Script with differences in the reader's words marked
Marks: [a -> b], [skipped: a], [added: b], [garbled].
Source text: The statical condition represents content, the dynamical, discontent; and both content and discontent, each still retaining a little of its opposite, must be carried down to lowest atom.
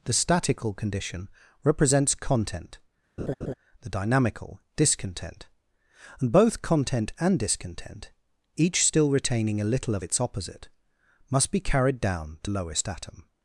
The statical condition represents content, the dynamical, discontent; and both content and discontent, each still retaining a little of its opposite, must be carried down to lowest atom.